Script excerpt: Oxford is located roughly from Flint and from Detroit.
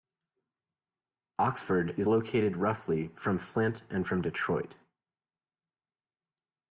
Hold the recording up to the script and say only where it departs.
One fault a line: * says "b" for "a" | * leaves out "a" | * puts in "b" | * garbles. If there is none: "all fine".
all fine